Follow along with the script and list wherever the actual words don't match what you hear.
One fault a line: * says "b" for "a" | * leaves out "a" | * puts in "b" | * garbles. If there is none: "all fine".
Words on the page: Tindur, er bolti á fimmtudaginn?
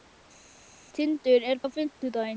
* leaves out "bolti"